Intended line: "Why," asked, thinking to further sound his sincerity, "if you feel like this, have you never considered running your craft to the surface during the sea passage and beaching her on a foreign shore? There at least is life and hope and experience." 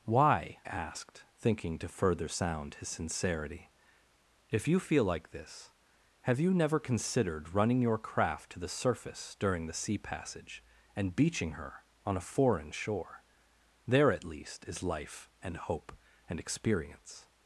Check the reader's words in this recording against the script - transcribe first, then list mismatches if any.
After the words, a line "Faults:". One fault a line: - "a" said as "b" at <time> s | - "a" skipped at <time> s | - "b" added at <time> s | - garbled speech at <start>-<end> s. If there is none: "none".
"Why," asked, thinking to further sound his sincerity, "if you feel like this, have you never considered running your craft to the surface during the sea passage and beaching her on a foreign shore? There at least is life and hope and experience."
Faults:
none